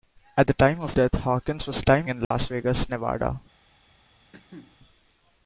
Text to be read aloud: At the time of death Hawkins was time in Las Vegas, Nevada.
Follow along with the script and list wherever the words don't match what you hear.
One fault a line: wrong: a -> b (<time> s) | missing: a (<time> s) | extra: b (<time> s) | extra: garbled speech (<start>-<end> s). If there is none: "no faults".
no faults